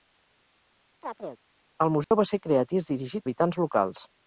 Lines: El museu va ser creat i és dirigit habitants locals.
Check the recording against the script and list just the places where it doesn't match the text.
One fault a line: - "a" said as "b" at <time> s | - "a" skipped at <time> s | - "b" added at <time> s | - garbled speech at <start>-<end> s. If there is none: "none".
none